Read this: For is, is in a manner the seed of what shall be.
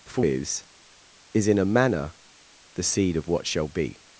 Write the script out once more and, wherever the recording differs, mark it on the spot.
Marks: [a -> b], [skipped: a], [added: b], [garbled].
For is, is in a manner the seed of what shall be.